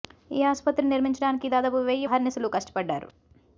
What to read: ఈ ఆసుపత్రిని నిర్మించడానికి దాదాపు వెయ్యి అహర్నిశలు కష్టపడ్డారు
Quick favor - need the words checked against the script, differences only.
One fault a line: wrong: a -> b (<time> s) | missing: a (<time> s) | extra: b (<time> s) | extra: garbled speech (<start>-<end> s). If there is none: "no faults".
no faults